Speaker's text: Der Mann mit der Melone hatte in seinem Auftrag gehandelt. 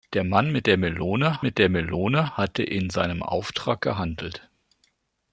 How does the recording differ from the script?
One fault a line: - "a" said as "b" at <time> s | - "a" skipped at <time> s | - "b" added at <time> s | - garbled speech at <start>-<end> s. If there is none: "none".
- "mit der Melone" added at 1.4 s